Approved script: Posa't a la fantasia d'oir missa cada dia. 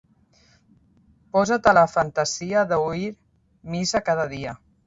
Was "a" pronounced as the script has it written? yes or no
yes